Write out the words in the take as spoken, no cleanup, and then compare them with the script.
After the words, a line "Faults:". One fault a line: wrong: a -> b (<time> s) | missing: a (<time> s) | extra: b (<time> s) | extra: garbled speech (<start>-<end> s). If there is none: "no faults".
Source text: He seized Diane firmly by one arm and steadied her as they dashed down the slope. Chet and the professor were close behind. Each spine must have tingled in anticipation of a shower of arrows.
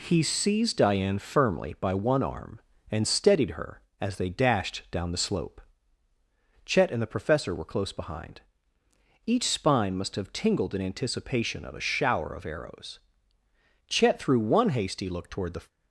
He seized Diane firmly by one arm and steadied her as they dashed down the slope. Chet and the professor were close behind. Each spine must have tingled in anticipation of a shower of arrows. Chet threw one hasty look toward the
Faults:
extra: Chet threw one hasty look toward the (13.9 s)